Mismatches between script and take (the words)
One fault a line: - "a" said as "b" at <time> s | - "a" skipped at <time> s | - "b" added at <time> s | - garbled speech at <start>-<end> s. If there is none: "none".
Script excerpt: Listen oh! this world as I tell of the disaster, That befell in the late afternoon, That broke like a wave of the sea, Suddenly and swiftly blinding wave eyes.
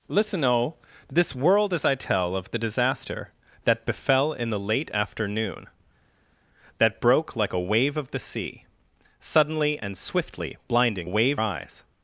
none